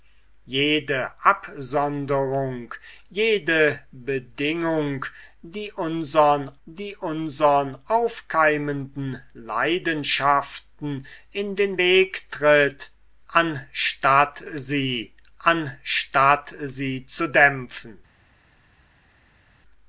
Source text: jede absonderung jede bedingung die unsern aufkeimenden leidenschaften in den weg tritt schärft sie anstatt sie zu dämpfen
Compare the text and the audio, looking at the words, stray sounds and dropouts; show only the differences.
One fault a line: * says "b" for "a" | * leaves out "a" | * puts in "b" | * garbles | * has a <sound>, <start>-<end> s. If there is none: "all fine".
* puts in "die unsern"
* says "anstatt" for "schärft"